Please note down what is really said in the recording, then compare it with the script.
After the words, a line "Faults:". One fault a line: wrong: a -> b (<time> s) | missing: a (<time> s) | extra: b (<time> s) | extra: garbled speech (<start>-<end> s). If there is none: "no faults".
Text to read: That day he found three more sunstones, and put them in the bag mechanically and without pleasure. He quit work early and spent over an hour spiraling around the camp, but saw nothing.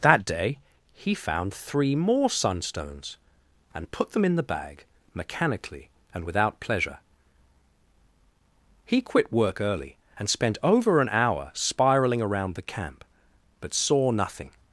That day he found three more sunstones, and put them in the bag mechanically and without pleasure. He quit work early and spent over an hour spiraling around the camp, but saw nothing.
Faults:
no faults